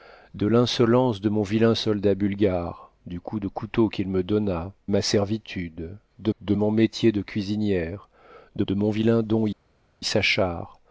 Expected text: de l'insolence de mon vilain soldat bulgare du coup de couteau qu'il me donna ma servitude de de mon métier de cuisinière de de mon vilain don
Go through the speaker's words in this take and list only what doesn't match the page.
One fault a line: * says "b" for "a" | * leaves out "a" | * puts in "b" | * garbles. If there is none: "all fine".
all fine